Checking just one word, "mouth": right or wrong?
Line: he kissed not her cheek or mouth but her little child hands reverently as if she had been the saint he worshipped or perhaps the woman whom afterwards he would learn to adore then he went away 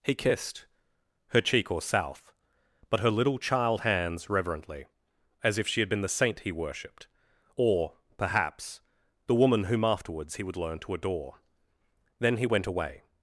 wrong